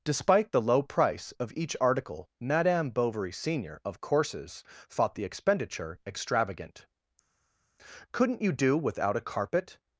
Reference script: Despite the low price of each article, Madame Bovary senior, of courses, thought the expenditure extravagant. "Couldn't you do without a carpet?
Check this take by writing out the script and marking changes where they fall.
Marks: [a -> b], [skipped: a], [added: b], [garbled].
Despite the low price of each article, Madame Bovary senior, of courses, thought the expenditure extravagant. "Couldn't you do without a carpet?